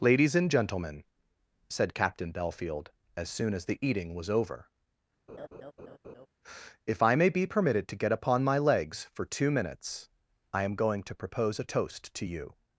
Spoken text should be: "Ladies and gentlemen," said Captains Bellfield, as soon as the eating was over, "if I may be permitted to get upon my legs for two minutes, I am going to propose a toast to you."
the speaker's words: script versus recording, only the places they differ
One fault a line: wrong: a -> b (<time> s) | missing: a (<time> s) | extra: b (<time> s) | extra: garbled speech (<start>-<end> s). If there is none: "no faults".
wrong: Captains -> Captain (1.9 s)